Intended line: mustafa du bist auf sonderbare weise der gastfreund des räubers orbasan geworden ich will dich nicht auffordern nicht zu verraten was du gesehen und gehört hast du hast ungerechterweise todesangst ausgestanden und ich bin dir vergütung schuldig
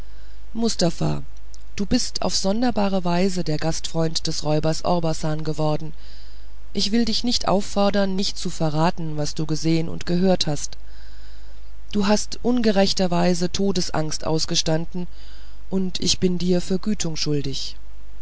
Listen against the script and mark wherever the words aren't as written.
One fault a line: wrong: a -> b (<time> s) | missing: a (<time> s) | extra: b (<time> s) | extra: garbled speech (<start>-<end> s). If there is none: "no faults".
no faults